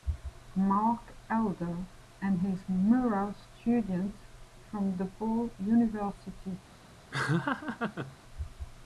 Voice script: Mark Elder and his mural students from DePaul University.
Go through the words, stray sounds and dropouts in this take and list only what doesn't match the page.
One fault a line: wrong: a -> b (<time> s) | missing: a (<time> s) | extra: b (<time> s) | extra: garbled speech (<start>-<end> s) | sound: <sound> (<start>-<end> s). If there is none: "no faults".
sound: laugh (7.1-8.2 s)